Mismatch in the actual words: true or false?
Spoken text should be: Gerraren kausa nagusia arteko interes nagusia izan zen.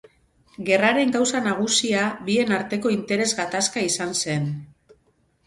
true